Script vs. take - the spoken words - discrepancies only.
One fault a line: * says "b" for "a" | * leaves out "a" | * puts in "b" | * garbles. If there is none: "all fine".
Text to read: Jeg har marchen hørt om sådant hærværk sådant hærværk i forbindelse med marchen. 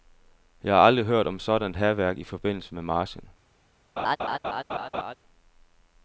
* says "aldrig" for "marchen"
* leaves out "sådant hærværk"